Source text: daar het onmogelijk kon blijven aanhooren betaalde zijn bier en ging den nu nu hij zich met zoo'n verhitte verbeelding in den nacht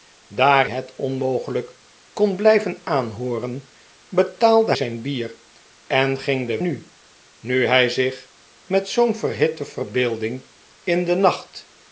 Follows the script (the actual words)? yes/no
yes